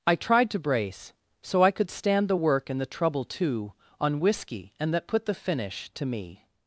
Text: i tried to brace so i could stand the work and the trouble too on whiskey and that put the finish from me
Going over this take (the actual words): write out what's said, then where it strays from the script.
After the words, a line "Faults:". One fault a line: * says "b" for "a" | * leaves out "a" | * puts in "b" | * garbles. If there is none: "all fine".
i tried to brace so i could stand the work and the trouble too on whiskey and that put the finish to me
Faults:
* says "to" for "from"